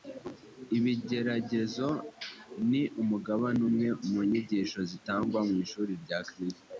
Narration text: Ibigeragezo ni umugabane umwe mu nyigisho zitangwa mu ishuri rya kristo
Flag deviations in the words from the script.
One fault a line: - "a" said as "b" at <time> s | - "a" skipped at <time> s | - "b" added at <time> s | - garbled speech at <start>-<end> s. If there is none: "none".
none